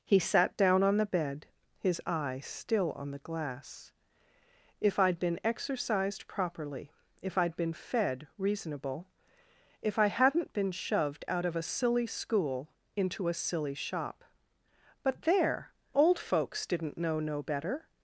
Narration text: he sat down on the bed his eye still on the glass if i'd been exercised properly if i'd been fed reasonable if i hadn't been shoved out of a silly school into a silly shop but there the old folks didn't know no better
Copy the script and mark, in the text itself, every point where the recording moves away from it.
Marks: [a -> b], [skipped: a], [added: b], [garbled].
he sat down on the bed his eye still on the glass if i'd been exercised properly if i'd been fed reasonable if i hadn't been shoved out of a silly school into a silly shop but there [skipped: the] old folks didn't know no better